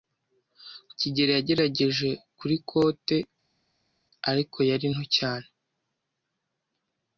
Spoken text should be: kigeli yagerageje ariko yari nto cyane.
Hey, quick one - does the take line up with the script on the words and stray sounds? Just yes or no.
no